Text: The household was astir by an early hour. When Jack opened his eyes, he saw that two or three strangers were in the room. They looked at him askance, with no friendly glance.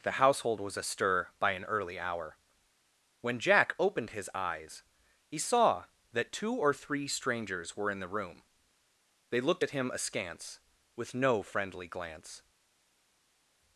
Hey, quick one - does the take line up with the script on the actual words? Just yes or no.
yes